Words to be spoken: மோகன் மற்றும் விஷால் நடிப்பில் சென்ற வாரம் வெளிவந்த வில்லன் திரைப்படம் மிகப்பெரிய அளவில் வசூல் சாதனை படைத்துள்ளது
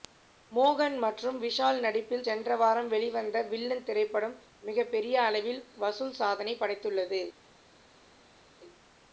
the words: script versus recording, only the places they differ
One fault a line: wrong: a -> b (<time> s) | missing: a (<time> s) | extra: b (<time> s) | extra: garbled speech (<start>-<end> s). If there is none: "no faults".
no faults